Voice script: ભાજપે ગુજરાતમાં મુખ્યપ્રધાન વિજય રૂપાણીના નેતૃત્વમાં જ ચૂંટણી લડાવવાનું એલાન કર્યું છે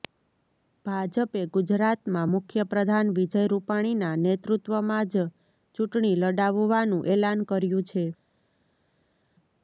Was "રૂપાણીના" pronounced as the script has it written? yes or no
yes